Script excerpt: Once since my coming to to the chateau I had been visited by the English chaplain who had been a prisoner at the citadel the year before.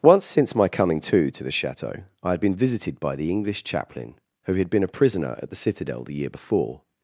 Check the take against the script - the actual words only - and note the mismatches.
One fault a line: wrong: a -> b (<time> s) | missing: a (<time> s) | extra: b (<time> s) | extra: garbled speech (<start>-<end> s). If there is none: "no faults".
no faults